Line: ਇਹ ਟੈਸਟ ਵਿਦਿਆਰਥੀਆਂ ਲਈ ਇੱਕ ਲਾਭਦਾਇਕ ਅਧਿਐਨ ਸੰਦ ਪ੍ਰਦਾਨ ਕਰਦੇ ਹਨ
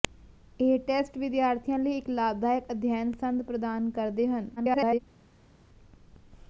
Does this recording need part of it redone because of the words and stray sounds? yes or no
yes